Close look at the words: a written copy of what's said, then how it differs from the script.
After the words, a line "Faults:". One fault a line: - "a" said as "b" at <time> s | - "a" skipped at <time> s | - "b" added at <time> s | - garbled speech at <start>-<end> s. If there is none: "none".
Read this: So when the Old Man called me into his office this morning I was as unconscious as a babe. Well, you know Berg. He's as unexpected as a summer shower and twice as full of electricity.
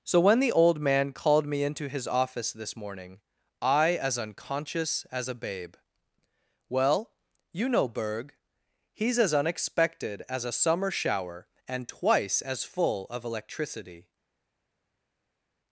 So when the Old Man called me into his office this morning I as unconscious as a babe. Well, you know Berg. He's as unexpected as a summer shower and twice as full of electricity.
Faults:
- "was" skipped at 4.0 s